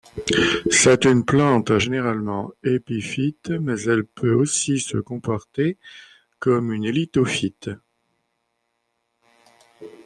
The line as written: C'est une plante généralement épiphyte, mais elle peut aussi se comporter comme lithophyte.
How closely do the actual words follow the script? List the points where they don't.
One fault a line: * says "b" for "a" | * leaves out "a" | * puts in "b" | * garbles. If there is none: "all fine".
* puts in "une"